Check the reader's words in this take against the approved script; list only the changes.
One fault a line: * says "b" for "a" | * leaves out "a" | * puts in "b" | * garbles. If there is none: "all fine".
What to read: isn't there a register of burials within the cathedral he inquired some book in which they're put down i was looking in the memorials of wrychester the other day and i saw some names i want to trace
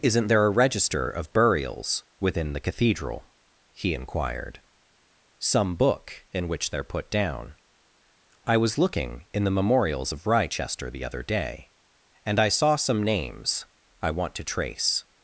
all fine